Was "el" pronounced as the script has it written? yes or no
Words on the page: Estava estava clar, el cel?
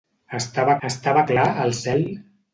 yes